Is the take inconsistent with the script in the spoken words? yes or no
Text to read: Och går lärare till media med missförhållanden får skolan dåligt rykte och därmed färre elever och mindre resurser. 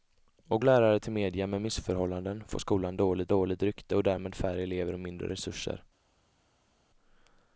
yes